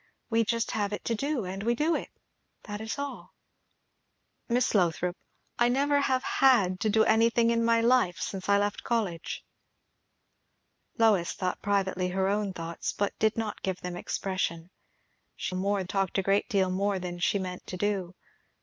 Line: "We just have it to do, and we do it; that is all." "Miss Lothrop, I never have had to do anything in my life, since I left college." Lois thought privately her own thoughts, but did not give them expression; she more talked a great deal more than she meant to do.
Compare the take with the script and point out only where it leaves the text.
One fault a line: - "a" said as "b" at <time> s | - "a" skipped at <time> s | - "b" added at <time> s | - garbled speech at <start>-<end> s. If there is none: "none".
none